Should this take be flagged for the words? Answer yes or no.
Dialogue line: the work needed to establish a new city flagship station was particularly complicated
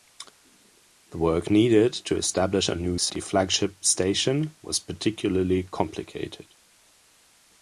no